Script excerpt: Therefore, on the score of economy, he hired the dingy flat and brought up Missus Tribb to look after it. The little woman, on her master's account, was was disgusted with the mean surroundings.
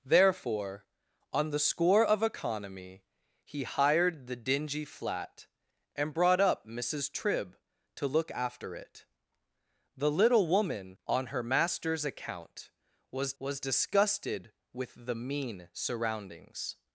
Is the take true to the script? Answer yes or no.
yes